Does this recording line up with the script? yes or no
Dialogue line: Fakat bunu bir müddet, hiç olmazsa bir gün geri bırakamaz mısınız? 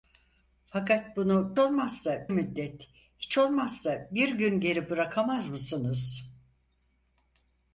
no